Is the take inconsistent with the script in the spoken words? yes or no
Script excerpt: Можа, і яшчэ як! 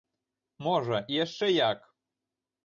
no